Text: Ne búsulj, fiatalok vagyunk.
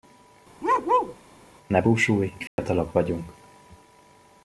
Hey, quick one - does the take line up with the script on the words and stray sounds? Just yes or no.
no